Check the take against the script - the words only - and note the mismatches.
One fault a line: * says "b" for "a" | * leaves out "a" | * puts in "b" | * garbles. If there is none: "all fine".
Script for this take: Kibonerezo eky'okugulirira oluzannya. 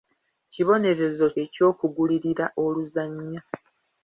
all fine